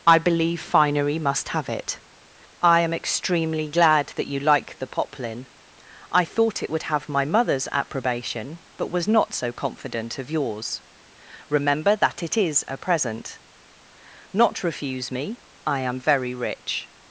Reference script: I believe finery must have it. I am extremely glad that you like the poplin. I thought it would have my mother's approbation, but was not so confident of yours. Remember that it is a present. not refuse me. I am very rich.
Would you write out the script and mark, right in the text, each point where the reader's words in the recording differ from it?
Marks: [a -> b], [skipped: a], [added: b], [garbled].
I believe finery must have it. I am extremely glad that you like the poplin. I thought it would have my mother's approbation, but was not so confident of yours. Remember that it is a present. not refuse me. I am very rich.